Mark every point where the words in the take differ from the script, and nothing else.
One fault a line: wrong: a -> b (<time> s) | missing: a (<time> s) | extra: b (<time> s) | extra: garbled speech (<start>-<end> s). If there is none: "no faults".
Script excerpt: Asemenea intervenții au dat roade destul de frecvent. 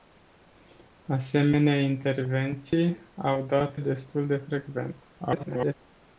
missing: roade (3.8 s)
extra: garbled speech (5.2-5.7 s)